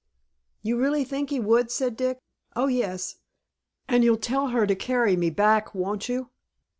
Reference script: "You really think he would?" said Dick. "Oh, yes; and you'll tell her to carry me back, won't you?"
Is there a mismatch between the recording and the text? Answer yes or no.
no